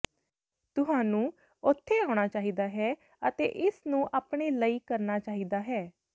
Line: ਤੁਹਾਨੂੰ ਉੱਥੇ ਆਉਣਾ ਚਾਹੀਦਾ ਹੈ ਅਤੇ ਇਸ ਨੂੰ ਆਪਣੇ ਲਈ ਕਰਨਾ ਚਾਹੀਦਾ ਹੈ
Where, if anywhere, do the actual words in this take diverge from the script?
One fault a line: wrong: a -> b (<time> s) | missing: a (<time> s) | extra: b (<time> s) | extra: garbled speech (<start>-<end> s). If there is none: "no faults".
no faults